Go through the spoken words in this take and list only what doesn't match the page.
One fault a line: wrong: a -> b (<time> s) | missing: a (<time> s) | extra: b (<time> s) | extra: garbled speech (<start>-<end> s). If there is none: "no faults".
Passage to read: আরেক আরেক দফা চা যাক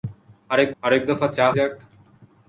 no faults